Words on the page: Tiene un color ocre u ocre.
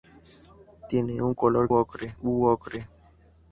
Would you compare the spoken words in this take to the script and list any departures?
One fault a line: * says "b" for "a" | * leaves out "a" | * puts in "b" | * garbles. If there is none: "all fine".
all fine